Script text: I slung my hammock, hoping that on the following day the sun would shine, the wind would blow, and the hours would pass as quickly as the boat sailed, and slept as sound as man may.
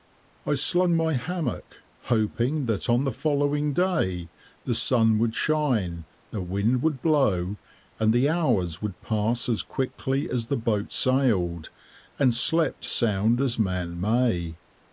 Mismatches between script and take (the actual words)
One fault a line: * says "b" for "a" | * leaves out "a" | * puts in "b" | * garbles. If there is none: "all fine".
* leaves out "as"